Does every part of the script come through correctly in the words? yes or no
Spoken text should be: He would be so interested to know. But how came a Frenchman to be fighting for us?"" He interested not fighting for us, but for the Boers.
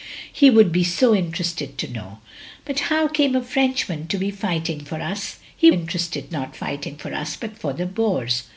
yes